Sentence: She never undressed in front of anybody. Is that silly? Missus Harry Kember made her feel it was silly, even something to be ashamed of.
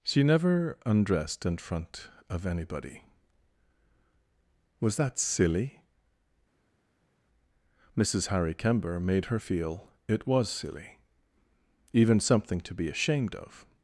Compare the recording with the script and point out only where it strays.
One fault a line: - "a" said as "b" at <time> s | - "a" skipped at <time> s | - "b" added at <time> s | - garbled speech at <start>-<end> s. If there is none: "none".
- "Is" said as "Was" at 4.8 s